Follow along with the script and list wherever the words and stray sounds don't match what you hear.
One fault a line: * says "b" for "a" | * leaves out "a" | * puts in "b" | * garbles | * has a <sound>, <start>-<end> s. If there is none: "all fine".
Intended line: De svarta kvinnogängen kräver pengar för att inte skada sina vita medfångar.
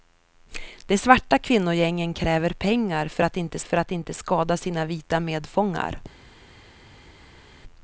* puts in "för att inte"